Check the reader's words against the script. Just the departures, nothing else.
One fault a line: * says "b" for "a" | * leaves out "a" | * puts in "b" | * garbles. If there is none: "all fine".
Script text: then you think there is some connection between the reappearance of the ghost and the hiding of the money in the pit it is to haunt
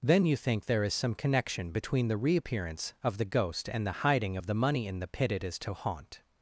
all fine